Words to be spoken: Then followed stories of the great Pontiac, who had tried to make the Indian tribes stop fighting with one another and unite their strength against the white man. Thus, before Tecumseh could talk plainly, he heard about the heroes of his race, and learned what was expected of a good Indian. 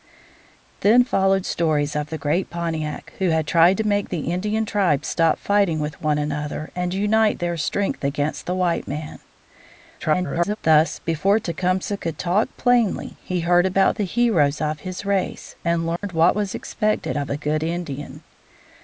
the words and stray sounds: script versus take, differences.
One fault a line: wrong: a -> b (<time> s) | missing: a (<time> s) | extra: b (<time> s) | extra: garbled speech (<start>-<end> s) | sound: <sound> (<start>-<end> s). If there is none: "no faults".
extra: garbled speech (10.0-10.6 s)
sound: dropout (16.0-16.0 s)